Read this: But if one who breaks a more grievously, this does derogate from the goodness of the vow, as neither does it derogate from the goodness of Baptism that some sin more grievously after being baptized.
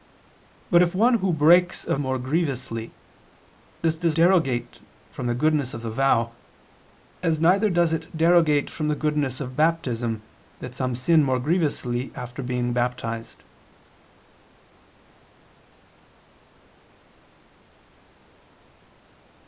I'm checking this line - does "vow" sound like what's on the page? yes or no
yes